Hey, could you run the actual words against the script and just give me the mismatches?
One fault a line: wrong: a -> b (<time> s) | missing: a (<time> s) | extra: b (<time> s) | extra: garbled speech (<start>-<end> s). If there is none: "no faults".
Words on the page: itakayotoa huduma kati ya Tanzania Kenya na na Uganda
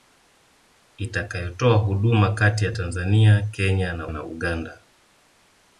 no faults